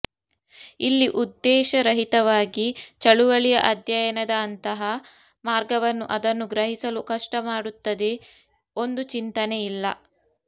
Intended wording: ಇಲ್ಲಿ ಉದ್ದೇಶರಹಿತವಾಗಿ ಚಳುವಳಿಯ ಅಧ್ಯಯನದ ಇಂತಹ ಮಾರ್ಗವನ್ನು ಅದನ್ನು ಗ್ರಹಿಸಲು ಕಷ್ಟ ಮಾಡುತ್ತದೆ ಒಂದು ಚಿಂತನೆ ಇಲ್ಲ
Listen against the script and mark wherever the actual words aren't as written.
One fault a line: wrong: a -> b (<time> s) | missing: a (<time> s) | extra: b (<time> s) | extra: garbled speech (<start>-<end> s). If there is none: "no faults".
wrong: ಇಂತಹ -> ಅಂತಹ (4.4 s)